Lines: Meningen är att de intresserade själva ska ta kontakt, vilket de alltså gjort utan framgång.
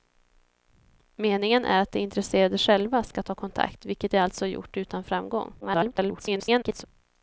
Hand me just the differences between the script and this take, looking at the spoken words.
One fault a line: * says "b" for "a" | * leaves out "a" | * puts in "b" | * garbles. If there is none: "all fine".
* garbles